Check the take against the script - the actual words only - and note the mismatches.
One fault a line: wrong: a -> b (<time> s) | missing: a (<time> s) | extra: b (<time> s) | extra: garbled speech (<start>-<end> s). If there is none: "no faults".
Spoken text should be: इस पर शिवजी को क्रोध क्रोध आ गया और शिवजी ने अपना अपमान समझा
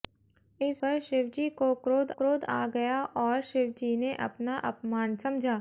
no faults